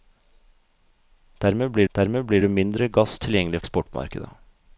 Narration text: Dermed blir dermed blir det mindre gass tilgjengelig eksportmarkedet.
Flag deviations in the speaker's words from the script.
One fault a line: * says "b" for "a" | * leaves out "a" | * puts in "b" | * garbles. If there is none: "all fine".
all fine